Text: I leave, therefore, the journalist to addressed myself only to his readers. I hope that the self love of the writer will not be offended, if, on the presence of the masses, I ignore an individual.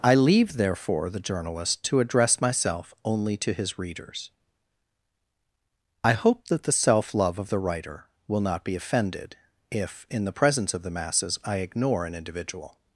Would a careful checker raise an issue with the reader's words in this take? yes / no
yes